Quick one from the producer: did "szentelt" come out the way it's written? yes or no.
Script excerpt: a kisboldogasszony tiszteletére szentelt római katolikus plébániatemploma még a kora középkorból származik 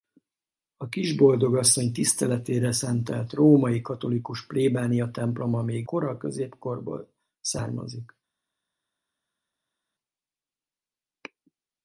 yes